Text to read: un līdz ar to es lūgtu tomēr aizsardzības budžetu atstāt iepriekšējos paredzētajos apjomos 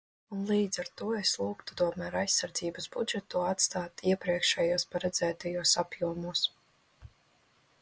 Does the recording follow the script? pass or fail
pass